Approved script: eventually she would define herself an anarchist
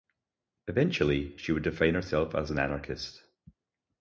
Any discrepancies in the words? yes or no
yes